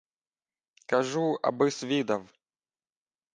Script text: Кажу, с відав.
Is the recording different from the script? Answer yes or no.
yes